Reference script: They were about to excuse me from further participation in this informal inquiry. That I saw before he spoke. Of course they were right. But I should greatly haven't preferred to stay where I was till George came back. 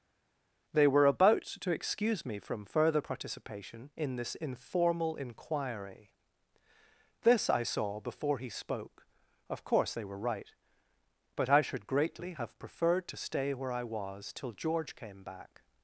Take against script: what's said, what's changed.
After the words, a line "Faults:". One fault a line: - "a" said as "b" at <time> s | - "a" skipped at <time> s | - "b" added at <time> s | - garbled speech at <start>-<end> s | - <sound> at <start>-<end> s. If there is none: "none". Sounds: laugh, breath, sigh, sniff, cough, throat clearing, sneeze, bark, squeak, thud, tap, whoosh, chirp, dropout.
They were about to excuse me from further participation in this informal inquiry. This I saw before he spoke. Of course they were right. But I should greatly have preferred to stay where I was till George came back.
Faults:
- "That" said as "This" at 7.2 s
- "haven't" said as "have" at 12.3 s